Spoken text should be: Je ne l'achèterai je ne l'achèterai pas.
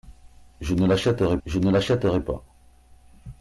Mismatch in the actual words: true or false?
false